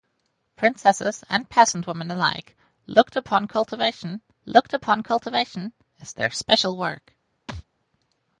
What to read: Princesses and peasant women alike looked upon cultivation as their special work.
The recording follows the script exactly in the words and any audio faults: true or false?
false